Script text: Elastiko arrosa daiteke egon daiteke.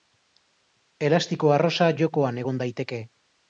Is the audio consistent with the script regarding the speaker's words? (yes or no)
no